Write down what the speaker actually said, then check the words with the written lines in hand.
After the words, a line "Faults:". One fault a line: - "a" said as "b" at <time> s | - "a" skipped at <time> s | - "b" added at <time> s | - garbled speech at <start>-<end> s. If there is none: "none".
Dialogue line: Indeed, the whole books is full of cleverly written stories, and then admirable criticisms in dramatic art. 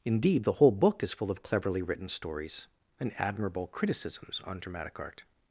Indeed, the whole book is full of cleverly written stories, and admirable criticisms on dramatic art.
Faults:
- "books" said as "book" at 0.7 s
- "then" skipped at 3.1 s
- "in" said as "on" at 4.5 s